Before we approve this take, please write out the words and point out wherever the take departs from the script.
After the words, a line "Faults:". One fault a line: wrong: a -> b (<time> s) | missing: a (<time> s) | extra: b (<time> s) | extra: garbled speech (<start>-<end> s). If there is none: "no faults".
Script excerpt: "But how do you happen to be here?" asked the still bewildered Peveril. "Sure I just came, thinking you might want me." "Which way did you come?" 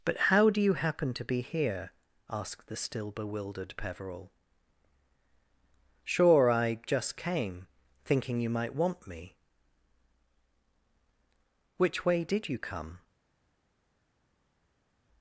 "But how do you happen to be here?" asked the still bewildered Peveril. "Sure I just came, thinking you might want me." "Which way did you come?"
Faults:
no faults